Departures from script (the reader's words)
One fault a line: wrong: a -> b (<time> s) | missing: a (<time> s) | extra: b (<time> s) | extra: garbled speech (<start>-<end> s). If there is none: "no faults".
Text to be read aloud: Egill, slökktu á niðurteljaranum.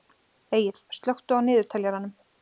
no faults